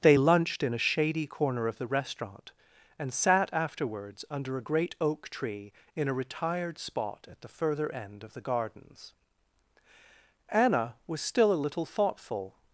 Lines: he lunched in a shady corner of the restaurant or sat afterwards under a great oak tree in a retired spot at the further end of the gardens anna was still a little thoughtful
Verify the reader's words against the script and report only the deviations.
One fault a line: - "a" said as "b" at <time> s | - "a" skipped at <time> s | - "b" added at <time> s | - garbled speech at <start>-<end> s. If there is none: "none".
- "he" said as "they" at 0.0 s
- "or" said as "and" at 3.0 s